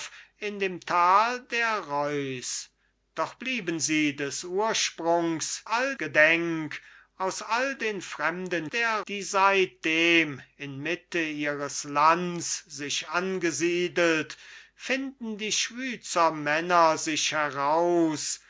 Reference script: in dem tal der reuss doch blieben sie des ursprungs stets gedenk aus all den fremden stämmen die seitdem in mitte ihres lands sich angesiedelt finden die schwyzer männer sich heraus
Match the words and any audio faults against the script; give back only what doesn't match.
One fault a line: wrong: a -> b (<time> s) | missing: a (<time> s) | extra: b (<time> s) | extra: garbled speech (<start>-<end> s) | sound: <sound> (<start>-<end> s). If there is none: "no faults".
wrong: stets -> all (5.6 s)
wrong: stämmen -> der (8.7 s)